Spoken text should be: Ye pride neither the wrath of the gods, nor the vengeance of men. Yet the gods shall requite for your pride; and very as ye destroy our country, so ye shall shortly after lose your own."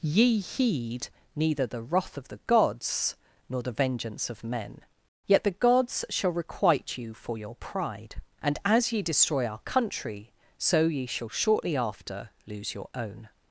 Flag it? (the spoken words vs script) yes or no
yes